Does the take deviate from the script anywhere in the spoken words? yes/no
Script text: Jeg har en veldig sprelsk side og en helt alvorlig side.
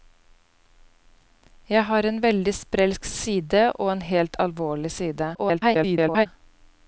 yes